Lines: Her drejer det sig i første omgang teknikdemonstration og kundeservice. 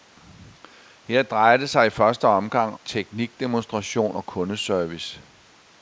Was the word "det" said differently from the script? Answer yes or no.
no